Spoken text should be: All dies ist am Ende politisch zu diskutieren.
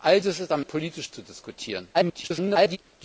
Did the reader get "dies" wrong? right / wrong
wrong